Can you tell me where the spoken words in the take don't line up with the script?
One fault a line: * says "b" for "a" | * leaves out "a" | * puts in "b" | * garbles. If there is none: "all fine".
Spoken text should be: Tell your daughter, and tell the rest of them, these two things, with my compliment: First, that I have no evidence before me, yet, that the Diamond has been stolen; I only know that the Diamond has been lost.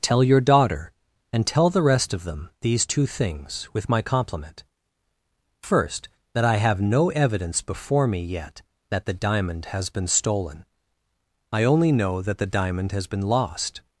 all fine